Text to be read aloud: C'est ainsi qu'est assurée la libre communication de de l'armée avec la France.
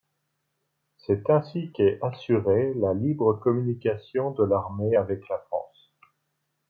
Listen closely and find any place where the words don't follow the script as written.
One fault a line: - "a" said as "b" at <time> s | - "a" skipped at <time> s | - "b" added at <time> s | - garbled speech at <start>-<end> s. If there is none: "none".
- "de" skipped at 4.5 s